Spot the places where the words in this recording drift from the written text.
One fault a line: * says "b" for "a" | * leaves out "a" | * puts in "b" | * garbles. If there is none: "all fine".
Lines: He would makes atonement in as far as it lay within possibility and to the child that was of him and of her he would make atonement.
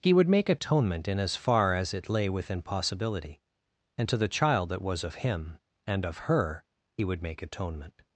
* says "make" for "makes"